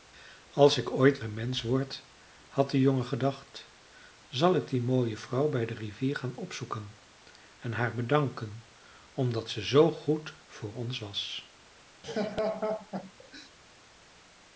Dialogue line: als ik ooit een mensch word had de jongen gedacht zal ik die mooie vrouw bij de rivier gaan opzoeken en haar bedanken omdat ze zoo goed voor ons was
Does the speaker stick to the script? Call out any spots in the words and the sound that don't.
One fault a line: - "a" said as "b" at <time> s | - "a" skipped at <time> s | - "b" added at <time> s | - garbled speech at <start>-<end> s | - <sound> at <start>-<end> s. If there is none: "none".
- laugh at 12.0-13.5 s